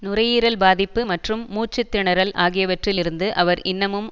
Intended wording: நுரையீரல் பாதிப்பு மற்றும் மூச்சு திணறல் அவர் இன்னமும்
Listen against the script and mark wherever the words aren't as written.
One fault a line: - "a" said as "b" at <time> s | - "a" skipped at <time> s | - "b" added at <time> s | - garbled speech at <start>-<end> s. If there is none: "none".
- "ஆகியவற்றில் இருந்து" added at 2.4 s